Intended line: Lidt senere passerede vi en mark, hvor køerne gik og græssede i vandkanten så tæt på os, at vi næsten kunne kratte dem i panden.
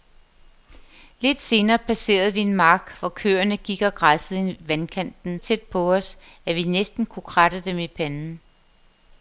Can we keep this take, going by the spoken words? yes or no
no